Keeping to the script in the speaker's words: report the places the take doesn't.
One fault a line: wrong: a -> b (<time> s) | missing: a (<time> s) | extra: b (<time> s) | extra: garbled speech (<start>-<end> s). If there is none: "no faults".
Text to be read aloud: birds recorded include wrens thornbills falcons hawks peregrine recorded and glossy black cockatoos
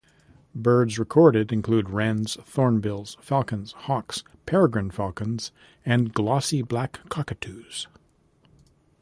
wrong: recorded -> falcons (4.9 s)